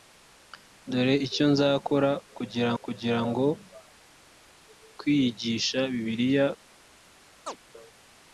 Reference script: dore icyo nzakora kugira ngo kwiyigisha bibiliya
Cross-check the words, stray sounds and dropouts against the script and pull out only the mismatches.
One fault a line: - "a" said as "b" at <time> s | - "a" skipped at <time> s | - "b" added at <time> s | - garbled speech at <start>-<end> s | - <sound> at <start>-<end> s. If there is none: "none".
- "kugira" added at 2.8 s
- chirp at 7.5-7.6 s